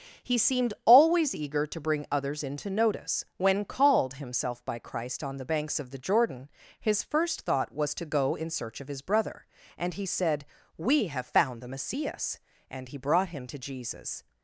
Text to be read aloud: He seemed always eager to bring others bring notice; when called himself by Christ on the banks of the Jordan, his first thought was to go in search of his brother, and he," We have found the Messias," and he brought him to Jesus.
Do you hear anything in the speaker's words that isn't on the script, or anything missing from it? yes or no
yes